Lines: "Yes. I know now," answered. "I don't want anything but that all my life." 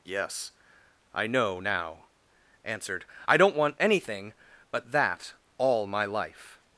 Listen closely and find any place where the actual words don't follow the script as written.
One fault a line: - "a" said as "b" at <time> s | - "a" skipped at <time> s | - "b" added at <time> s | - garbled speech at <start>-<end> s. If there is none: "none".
none